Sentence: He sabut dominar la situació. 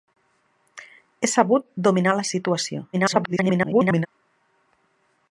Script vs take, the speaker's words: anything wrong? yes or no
yes